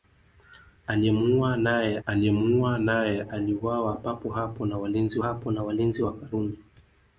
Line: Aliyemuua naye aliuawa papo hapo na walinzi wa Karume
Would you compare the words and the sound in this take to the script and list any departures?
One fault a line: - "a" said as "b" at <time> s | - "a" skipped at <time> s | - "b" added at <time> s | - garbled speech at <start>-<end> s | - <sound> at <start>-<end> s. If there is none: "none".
- "aliyemuua naye" added at 2.1 s
- "hapo na walinzi" added at 5.2 s